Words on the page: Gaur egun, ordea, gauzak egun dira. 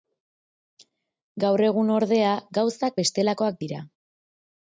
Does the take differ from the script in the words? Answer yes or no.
yes